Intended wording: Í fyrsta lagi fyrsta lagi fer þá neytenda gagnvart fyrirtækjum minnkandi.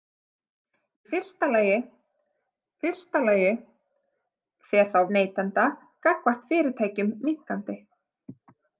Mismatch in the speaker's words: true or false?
false